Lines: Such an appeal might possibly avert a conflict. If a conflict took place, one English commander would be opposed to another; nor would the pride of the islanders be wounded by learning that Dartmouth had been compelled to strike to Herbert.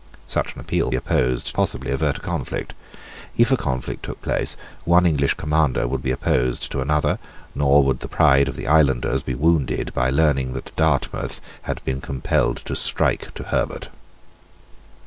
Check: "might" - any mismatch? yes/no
yes